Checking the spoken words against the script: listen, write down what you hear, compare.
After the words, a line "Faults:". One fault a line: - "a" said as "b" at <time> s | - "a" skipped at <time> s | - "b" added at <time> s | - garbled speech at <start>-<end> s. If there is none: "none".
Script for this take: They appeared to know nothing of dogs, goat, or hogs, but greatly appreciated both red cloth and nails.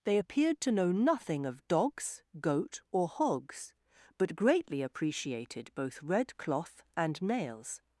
They appeared to know nothing of dogs, goat, or hogs, but greatly appreciated both red cloth and nails.
Faults:
none